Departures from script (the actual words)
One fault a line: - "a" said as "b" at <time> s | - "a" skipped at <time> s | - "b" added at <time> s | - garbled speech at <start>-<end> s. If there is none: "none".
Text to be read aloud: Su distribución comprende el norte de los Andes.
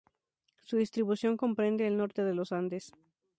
none